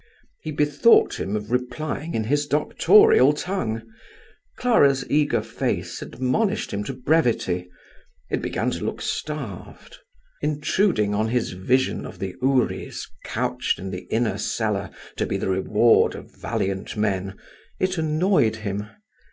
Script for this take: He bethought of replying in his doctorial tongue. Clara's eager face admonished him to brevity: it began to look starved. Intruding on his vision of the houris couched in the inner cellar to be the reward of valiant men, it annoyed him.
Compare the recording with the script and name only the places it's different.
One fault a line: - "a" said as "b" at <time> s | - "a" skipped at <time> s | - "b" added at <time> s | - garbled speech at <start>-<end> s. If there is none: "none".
- "him" added at 1.2 s